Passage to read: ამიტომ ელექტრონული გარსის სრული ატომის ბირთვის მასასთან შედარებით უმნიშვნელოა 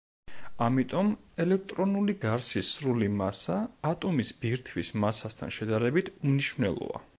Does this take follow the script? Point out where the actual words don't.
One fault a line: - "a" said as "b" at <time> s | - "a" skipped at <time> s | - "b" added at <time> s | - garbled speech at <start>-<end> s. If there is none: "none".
- "მასა" added at 3.2 s